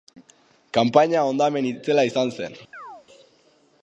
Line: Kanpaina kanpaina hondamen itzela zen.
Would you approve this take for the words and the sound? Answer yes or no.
no